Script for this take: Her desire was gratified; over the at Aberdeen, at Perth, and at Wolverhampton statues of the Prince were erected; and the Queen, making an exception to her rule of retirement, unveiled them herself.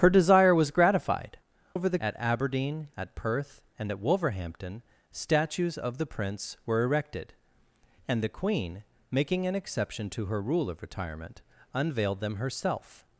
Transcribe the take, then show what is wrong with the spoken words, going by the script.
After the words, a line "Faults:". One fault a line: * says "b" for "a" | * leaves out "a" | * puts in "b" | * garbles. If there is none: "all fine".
Her desire was gratified; over the at Aberdeen, at Perth, and at Wolverhampton statues of the Prince were erected; and the Queen, making an exception to her rule of retirement, unveiled them herself.
Faults:
all fine